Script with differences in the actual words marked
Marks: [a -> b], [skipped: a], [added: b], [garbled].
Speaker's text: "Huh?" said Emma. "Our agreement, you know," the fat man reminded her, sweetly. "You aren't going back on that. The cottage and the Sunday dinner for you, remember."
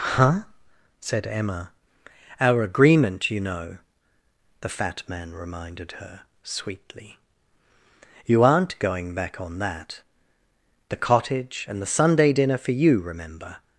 "Huh?" said Emma. "Our agreement, you know," the fat man reminded her, sweetly. "You aren't going back on that. The cottage and the Sunday dinner for you, remember."